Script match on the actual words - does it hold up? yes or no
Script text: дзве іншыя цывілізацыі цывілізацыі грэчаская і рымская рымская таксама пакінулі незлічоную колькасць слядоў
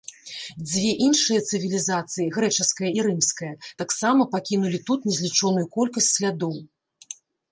no